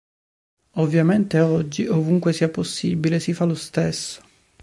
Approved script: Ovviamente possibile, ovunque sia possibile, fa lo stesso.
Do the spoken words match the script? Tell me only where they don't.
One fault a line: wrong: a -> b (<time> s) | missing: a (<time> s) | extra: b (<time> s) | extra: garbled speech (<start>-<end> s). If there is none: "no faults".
wrong: possibile -> oggi (1.4 s)
extra: si (3.2 s)